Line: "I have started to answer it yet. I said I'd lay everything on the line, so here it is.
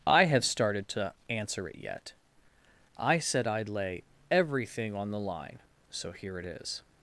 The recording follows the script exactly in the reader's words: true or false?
true